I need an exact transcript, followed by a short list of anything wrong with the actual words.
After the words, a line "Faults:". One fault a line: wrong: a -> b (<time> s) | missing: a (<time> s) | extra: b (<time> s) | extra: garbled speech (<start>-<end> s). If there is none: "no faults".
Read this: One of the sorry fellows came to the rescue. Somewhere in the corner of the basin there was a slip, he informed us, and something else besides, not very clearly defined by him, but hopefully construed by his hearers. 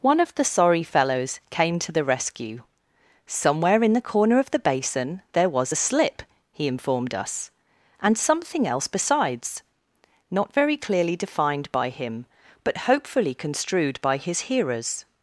One of the sorry fellows came to the rescue. Somewhere in the corner of the basin there was a slip, he informed us, and something else besides, not very clearly defined by him, but hopefully construed by his hearers.
Faults:
no faults